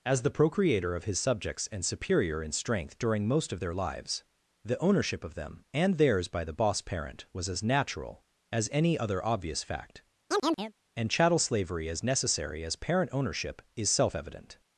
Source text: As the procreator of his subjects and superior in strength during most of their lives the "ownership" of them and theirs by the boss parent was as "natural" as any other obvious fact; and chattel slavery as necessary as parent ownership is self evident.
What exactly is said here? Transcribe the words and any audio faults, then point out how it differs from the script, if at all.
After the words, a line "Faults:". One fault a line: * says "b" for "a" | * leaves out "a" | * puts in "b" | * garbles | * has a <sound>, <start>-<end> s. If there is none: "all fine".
As the procreator of his subjects and superior in strength during most of their lives the "ownership" of them and theirs by the boss parent was as "natural" as any other obvious fact; and chattel slavery as necessary as parent ownership is self evident.
Faults:
* has a chirp, 10.3-10.7 s